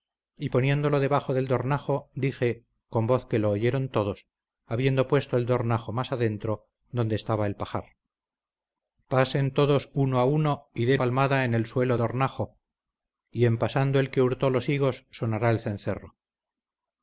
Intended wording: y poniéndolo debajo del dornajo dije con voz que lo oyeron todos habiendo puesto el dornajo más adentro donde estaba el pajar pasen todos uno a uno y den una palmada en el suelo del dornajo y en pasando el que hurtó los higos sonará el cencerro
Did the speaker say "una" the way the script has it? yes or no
no